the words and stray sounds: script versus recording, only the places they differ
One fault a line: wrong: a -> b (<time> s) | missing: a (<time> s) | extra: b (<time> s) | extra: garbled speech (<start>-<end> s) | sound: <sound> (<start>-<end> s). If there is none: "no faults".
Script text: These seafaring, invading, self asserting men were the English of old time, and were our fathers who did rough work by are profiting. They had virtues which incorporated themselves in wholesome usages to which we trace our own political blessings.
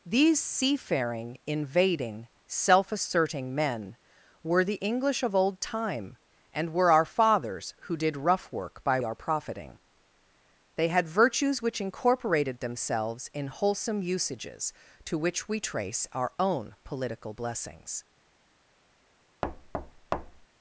sound: thud (19.4-20.5 s)